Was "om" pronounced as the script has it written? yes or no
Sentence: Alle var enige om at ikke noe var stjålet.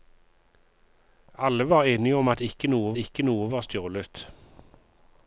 yes